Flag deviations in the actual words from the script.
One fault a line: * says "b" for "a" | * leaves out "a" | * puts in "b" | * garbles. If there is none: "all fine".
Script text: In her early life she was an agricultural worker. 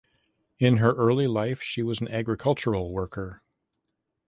all fine